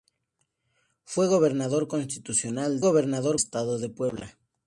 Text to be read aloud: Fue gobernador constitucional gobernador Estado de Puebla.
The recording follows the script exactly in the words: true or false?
true